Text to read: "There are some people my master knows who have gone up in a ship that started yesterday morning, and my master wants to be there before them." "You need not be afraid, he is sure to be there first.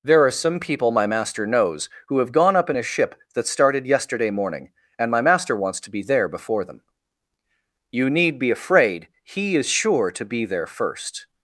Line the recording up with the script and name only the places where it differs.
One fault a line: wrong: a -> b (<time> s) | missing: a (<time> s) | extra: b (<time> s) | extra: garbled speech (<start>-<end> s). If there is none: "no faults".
missing: not (8.4 s)